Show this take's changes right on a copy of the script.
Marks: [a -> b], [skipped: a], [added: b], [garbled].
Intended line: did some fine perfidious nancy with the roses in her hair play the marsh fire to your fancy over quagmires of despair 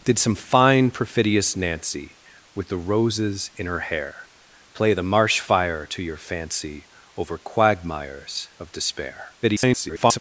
did some fine perfidious nancy with the roses in her hair play the marsh fire to your fancy over quagmires of despair [garbled]